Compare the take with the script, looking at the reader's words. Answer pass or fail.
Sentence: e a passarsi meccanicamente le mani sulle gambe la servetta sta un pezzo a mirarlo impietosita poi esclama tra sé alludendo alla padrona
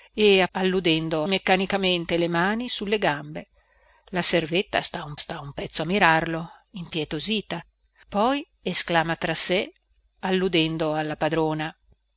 fail